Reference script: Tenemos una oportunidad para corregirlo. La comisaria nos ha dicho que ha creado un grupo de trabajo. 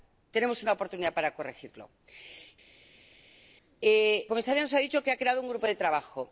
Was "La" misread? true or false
true